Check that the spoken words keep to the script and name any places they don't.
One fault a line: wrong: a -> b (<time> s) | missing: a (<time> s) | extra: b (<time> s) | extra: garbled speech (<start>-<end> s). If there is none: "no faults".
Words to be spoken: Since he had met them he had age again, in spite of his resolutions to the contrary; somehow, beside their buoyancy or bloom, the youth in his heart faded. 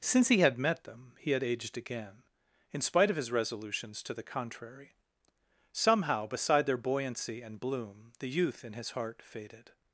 wrong: age -> aged (1.4 s)
wrong: or -> and (7.4 s)